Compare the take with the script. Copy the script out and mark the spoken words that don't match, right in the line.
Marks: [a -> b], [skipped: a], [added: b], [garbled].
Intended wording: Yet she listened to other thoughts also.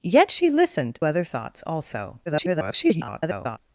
Yet she listened [skipped: to] other thoughts also. [garbled]